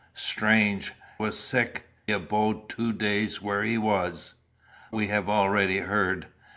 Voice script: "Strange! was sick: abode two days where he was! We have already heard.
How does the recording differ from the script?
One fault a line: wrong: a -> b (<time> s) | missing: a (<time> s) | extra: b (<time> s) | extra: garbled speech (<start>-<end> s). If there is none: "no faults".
no faults